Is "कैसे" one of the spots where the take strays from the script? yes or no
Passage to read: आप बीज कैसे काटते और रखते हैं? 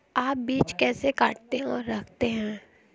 no